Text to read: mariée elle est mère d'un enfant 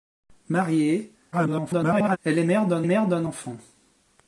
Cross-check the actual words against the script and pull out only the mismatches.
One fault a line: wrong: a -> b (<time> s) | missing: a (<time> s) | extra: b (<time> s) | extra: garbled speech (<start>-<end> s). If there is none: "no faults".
extra: garbled speech (1.3-2.2 s)
extra: mère d'un (2.8 s)